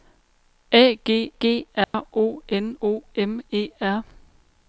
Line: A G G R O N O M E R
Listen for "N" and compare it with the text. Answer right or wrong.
right